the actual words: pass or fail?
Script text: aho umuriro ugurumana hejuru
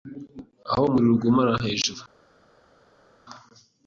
pass